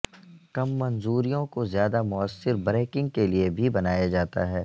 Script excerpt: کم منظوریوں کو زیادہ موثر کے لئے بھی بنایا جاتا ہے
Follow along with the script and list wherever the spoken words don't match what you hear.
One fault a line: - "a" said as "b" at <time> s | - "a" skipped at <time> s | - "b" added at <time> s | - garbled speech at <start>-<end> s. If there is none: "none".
- "بریکنگ" added at 2.6 s